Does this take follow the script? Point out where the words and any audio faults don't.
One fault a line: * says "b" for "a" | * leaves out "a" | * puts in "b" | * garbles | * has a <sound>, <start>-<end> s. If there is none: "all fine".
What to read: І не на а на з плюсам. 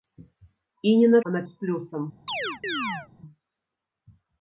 * has a chirp, 2.3-3.1 s